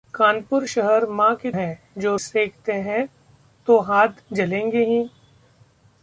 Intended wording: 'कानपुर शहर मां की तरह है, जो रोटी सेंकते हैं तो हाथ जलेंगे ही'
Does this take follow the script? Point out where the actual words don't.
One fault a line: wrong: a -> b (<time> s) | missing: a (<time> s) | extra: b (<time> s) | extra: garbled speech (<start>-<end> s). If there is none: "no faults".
missing: तरह (1.5 s)
missing: रोटी (2.1 s)